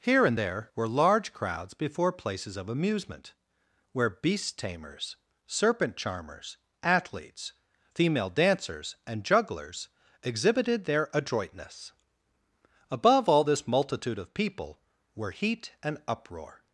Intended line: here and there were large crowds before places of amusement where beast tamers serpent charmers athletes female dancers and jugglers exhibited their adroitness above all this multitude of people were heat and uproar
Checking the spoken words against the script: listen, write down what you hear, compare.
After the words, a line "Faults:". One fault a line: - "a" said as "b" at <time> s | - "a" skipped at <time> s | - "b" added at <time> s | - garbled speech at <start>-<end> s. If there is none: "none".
here and there were large crowds before places of amusement where beast tamers serpent charmers athletes female dancers and jugglers exhibited their adroitness above all this multitude of people were heat and uproar
Faults:
none